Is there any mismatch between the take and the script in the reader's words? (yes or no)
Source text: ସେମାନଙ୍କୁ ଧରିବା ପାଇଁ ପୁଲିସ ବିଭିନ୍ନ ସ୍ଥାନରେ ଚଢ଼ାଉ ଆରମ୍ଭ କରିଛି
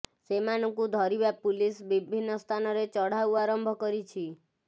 yes